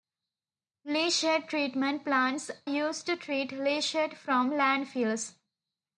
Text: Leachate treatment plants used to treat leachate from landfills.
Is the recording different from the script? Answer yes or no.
no